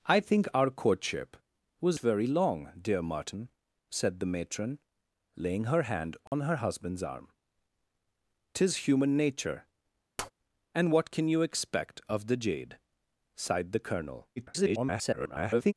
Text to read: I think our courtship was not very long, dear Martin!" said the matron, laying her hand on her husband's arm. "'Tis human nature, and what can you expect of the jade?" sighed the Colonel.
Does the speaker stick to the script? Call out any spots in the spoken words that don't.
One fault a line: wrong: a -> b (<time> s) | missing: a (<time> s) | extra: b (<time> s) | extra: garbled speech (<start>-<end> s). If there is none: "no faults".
missing: not (2.0 s)
extra: garbled speech (14.4-15.7 s)